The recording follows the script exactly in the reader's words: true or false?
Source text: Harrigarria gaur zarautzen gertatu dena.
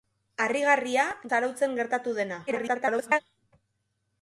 false